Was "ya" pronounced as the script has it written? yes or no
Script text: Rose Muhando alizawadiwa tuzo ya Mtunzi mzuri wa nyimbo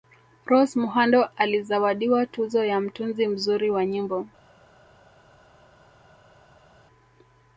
yes